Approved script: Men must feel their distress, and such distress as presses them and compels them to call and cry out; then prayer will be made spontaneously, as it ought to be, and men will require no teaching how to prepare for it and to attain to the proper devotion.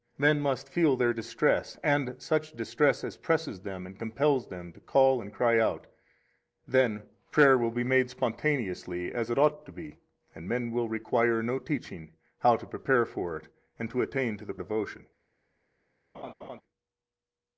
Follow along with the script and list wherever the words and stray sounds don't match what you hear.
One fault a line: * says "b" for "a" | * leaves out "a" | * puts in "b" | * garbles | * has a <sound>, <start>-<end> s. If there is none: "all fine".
* leaves out "proper"
* has a laugh, 16.1-16.6 s